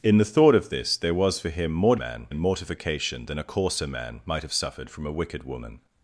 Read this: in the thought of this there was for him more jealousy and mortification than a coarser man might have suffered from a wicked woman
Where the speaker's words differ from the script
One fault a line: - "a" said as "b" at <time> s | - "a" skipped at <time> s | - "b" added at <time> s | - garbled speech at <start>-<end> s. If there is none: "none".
- "jealousy" said as "man" at 1.9 s